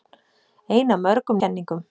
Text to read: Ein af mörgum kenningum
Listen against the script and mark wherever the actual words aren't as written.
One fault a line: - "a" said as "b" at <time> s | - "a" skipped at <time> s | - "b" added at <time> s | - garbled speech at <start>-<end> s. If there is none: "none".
none